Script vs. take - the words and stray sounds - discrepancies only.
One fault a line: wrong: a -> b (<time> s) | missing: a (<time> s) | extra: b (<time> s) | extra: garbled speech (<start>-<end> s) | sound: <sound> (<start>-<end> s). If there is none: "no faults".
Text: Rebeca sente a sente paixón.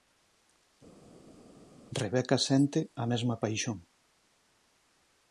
wrong: sente -> mesma (3.1 s)